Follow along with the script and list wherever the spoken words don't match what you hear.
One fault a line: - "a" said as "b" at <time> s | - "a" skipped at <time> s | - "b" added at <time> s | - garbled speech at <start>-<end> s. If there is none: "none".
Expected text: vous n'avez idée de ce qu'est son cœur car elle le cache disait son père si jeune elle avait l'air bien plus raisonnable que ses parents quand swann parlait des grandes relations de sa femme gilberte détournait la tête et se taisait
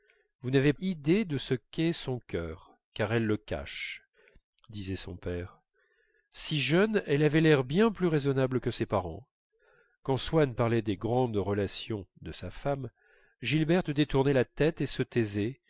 none